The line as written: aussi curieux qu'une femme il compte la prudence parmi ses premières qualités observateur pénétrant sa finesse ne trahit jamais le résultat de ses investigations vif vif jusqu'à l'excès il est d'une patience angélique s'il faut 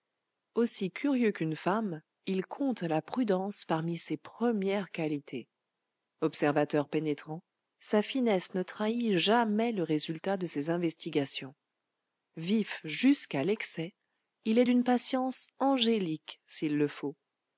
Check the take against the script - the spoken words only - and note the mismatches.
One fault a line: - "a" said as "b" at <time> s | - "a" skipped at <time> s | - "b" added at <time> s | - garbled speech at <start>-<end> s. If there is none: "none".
- "vif" skipped at 12.8 s
- "le" added at 16.8 s